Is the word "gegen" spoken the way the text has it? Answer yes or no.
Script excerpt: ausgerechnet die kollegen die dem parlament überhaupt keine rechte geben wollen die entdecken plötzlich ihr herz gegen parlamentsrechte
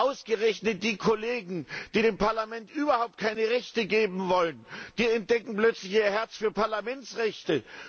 no